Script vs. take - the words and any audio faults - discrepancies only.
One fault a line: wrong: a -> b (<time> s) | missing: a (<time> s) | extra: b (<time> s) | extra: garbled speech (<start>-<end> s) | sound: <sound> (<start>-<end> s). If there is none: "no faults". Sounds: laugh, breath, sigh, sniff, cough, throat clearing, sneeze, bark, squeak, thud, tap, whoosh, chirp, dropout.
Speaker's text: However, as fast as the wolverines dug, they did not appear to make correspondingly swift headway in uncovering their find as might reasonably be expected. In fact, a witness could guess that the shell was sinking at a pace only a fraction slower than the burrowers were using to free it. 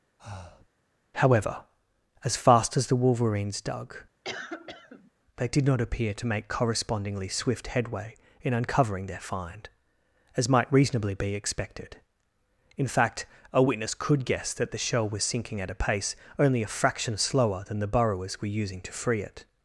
sound: breath (0.2-0.7 s)
sound: cough (4.2-5.1 s)